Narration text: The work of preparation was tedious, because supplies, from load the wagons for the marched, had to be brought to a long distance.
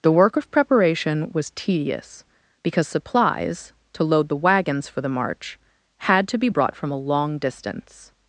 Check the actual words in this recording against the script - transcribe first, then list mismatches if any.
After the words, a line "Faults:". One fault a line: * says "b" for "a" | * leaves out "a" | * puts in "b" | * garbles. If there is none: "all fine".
The work of preparation was tedious, because supplies, to load the wagons for the march, had to be brought from a long distance.
Faults:
* says "to" for "from"
* says "march" for "marched"
* says "from" for "to"